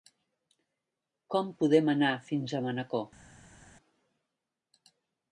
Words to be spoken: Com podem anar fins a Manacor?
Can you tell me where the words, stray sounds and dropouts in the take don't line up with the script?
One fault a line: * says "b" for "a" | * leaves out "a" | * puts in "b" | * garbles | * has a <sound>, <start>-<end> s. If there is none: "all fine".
all fine